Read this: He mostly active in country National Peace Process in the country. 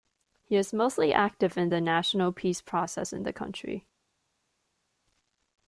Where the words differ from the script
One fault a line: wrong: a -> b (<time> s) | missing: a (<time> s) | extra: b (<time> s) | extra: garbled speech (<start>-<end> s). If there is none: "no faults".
extra: is (0.6 s)
wrong: country -> the (1.7 s)